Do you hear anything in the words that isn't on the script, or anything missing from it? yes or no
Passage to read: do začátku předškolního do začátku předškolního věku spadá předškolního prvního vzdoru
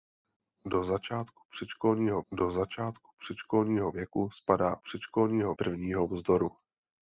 no